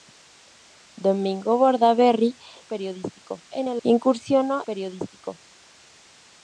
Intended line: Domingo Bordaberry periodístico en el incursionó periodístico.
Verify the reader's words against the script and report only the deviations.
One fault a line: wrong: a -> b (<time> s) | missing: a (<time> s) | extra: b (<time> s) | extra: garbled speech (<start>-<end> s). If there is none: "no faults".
no faults